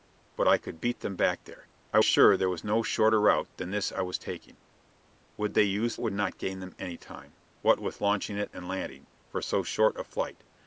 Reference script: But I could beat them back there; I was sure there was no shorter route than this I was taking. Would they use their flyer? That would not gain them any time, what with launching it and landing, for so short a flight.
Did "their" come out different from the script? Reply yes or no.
yes